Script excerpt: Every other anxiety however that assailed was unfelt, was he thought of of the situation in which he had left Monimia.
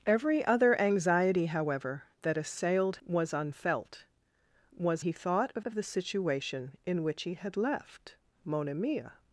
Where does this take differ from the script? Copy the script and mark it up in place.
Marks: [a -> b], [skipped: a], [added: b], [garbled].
Every other anxiety however that assailed was unfelt, was he thought of of the situation in which he had left Monimia.